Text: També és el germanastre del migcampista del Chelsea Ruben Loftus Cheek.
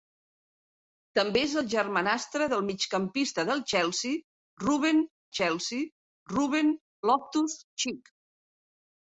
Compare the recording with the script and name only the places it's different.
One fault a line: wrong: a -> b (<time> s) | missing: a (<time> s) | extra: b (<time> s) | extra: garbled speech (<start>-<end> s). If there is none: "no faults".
extra: Chelsea Ruben (5.4 s)